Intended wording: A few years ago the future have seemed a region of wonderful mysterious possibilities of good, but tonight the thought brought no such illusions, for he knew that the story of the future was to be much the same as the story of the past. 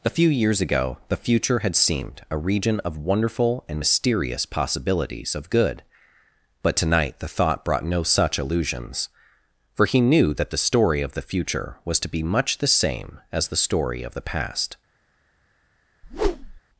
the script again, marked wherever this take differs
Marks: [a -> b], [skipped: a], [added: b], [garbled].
A few years ago the future [have -> had] seemed a region of wonderful [added: and] mysterious possibilities of good, but tonight the thought brought no such illusions, for he knew that the story of the future was to be much the same as the story of the past.